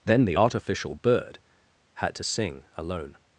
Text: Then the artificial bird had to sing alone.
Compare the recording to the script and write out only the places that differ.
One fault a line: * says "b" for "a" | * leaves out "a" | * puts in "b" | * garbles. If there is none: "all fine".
all fine